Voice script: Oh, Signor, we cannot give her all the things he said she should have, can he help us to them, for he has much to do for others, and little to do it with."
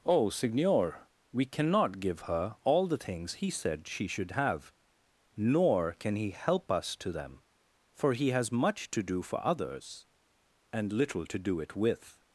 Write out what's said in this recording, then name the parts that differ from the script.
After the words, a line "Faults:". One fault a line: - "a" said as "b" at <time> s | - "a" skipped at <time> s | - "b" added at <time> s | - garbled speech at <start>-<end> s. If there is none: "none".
Oh, Signor, we cannot give her all the things he said she should have, nor can he help us to them, for he has much to do for others, and little to do it with."
Faults:
- "nor" added at 5.3 s